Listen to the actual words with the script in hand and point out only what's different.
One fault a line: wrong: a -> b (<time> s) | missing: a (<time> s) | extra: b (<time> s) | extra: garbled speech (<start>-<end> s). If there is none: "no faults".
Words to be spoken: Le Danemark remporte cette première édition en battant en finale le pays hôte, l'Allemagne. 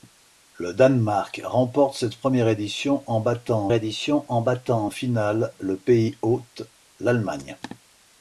extra: édition en battant (3.7 s)